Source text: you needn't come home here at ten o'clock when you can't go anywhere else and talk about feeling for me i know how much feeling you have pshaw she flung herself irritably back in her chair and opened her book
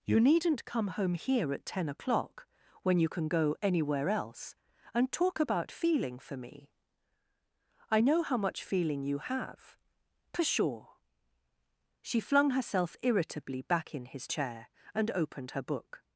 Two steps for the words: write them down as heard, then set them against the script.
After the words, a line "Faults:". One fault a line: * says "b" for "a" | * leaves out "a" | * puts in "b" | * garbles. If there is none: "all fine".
you needn't come home here at ten o'clock when you can go anywhere else and talk about feeling for me i know how much feeling you have pshaw she flung herself irritably back in his chair and opened her book
Faults:
* says "can" for "can't"
* says "his" for "her"